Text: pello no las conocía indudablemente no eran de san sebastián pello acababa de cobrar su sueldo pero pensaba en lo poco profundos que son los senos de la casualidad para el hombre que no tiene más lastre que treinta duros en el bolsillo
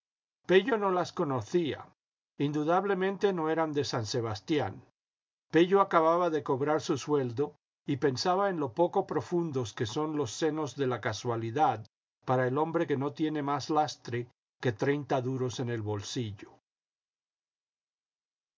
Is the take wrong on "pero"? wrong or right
wrong